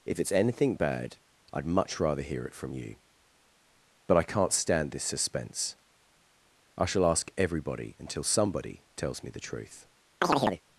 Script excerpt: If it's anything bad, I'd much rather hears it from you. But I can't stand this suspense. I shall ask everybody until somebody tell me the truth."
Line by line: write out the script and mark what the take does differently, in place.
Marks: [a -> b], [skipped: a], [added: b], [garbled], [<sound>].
If it's anything bad, I'd much rather [hears -> hear] it from you. But I can't stand this suspense. I shall ask everybody until somebody [tell -> tells] me the truth." [chirp]